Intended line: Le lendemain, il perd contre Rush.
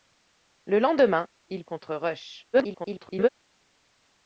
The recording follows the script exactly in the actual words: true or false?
false